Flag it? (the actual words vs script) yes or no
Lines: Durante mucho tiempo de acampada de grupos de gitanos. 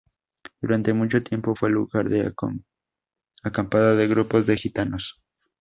yes